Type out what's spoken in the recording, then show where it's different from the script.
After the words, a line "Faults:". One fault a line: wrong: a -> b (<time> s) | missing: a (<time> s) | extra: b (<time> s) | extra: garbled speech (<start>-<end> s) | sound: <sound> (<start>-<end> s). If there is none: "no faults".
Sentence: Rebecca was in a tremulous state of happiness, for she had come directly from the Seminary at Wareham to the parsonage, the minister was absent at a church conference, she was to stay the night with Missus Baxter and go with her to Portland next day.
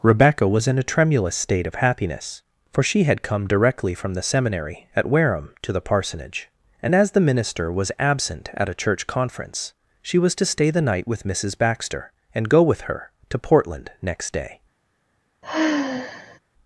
Rebecca was in a tremulous state of happiness, for she had come directly from the Seminary at Wareham to the parsonage, and as the minister was absent at a church conference, she was to stay the night with Missus Baxter and go with her to Portland next day.
Faults:
extra: and as (6.8 s)
sound: sigh (15.4-16.4 s)